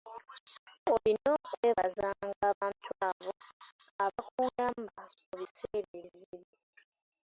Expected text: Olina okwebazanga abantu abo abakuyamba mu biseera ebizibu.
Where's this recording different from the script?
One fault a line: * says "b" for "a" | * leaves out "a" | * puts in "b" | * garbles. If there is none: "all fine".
all fine